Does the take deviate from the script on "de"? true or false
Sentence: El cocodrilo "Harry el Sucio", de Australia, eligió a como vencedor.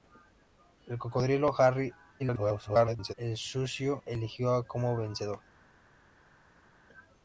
true